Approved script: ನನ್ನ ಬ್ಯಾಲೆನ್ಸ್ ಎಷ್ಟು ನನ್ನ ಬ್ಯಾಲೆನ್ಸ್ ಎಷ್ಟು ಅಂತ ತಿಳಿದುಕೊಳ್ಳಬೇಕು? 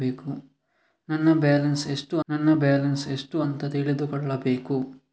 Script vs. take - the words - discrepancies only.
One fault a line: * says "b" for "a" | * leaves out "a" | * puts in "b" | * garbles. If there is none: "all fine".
all fine